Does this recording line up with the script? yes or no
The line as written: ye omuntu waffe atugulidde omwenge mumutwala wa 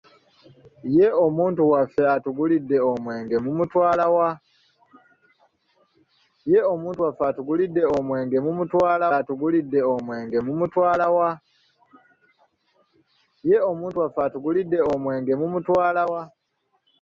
no